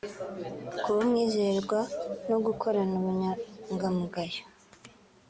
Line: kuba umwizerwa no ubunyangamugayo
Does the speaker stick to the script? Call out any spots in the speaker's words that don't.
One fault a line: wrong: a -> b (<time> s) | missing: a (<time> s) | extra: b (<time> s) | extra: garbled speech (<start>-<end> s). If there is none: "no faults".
extra: gukorana (2.5 s)